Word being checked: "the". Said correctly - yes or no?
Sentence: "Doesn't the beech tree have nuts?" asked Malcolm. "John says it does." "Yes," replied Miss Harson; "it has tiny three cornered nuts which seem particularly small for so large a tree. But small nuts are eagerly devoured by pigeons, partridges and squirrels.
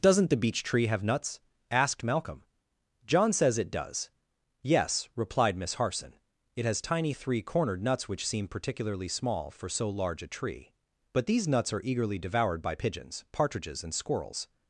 yes